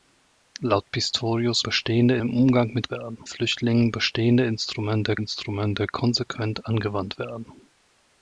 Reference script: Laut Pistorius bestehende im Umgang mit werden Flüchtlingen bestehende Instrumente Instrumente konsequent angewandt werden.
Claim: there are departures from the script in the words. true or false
false